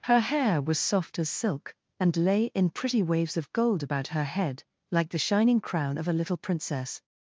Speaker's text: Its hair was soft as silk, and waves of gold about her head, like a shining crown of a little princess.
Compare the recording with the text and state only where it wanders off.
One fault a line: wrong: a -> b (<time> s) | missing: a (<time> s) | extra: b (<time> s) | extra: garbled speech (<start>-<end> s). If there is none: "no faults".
wrong: Its -> Her (0.1 s)
extra: lay in pretty (2.2 s)
wrong: a -> the (5.1 s)